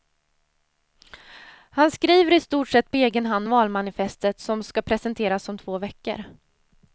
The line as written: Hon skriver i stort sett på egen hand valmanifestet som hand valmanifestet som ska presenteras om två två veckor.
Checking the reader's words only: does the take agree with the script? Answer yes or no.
no